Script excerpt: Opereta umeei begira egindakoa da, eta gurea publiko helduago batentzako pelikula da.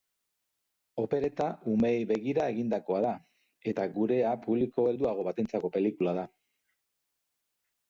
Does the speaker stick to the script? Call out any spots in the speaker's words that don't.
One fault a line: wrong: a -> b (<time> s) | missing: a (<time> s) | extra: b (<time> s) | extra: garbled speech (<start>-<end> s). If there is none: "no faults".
no faults